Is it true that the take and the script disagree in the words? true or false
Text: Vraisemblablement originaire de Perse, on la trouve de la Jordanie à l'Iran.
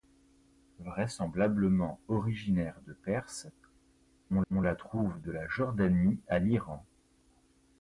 true